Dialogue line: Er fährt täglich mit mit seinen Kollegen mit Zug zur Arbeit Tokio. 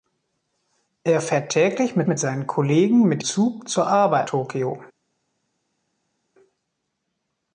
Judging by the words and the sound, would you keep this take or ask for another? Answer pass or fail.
pass